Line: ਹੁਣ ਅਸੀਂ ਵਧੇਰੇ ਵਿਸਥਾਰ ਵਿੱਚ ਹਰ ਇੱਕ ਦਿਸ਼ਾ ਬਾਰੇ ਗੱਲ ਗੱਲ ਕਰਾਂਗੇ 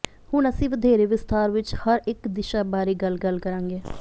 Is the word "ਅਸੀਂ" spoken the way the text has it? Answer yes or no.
yes